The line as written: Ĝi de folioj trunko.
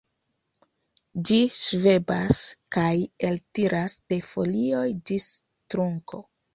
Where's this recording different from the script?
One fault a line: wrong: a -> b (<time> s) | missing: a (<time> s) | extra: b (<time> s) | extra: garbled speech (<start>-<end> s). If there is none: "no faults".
extra: ŝvebas kaj eltiras (1.6 s)
extra: ĝis (5.1 s)